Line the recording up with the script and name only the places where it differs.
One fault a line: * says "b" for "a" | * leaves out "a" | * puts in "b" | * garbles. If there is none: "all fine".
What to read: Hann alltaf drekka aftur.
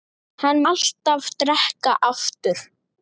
all fine